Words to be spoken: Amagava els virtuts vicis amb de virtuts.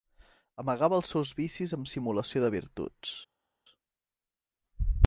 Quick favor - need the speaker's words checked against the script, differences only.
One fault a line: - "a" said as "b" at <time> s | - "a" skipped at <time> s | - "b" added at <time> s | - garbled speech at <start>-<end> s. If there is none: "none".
- "virtuts" said as "seus" at 1.1 s
- "simulació" added at 1.9 s